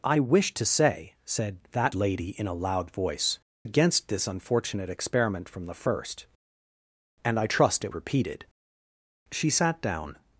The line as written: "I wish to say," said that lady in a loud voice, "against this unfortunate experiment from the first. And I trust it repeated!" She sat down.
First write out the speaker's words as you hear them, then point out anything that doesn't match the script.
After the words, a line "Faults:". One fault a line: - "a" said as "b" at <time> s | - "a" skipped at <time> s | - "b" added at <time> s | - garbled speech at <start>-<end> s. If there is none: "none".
"I wish to say," said that lady in a loud voice, "against this unfortunate experiment from the first. And I trust it repeated!" She sat down.
Faults:
none